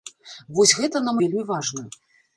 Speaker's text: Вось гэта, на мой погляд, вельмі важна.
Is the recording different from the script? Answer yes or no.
yes